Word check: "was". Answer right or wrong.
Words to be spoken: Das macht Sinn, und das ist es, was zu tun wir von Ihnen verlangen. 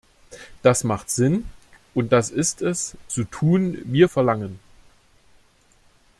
wrong